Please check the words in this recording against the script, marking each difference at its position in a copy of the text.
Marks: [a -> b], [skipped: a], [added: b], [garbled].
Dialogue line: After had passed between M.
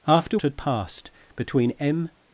After had passed between M.